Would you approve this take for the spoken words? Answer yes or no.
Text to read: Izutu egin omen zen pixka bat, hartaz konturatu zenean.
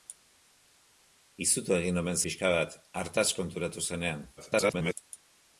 no